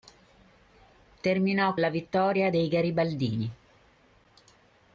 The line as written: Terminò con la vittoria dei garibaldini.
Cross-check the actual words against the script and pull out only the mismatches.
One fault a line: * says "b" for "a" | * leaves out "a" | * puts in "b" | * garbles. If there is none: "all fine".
* leaves out "con"